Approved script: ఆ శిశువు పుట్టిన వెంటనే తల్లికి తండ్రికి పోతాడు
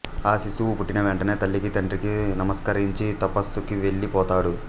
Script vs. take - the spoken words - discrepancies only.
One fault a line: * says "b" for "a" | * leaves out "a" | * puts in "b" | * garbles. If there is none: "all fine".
* puts in "నమస్కరించి తపస్సుకి వెళ్ళి"